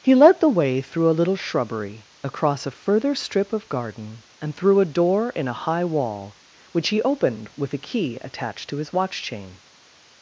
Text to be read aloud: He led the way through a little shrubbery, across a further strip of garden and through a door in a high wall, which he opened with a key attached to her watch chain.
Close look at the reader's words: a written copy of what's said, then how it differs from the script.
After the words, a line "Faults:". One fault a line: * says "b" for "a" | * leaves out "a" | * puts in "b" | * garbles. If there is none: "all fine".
He led the way through a little shrubbery, across a further strip of garden and through a door in a high wall, which he opened with a key attached to his watch chain.
Faults:
* says "his" for "her"